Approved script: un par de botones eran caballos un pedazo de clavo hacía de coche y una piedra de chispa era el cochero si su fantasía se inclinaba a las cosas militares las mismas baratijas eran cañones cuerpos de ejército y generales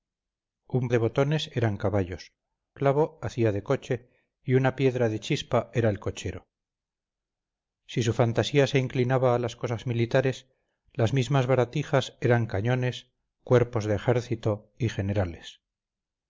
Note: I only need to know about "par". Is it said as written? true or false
false